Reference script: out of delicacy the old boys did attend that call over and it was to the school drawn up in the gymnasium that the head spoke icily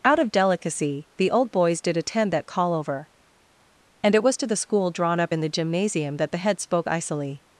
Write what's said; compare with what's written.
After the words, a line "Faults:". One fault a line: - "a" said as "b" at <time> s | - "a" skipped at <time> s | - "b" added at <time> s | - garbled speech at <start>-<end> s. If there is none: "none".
out of delicacy the old boys did attend that call over and it was to the school drawn up in the gymnasium that the head spoke icily
Faults:
none